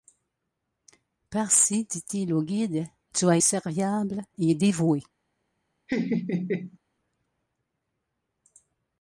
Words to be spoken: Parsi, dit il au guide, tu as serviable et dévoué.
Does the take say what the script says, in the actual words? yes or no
yes